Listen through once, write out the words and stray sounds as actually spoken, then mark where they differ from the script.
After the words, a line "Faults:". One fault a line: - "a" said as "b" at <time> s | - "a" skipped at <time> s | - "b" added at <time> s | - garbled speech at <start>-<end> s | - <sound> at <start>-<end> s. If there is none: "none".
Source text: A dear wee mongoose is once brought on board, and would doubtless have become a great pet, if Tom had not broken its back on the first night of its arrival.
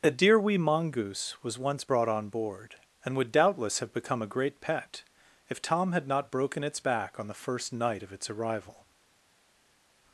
A dear wee mongoose was once brought on board, and would doubtless have become a great pet, if Tom had not broken its back on the first night of its arrival.
Faults:
- "is" said as "was" at 1.4 s